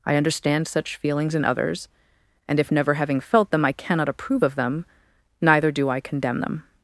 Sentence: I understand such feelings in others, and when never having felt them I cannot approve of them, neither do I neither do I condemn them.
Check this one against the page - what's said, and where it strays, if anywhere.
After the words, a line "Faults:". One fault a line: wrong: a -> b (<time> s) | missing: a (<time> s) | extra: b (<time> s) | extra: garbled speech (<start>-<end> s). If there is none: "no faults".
I understand such feelings in others, and if never having felt them I cannot approve of them, neither do I condemn them.
Faults:
wrong: when -> if (2.6 s)
missing: neither do I (6.0 s)